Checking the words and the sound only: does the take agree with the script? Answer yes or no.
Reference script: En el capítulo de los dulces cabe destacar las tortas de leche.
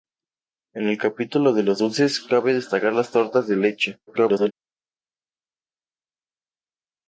no